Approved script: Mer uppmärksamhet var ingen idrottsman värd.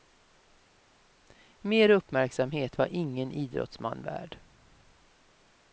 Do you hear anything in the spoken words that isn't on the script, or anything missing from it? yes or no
no